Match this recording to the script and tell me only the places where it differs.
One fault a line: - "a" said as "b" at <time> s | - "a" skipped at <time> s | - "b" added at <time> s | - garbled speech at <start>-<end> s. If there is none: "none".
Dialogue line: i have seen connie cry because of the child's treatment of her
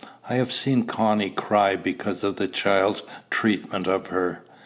none